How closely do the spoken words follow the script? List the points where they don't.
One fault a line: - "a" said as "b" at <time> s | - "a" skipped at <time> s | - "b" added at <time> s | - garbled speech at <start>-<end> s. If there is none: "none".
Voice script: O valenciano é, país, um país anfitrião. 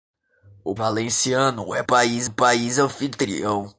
none